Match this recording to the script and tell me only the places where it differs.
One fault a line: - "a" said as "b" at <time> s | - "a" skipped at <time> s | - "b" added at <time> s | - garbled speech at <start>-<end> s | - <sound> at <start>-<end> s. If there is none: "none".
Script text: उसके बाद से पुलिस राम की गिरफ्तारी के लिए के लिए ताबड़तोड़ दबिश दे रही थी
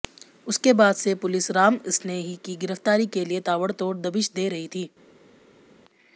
- "सनेही" added at 1.9 s
- "के लिए" skipped at 3.4 s